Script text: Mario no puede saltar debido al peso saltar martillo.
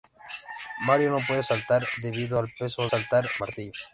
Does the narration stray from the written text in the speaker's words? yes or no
no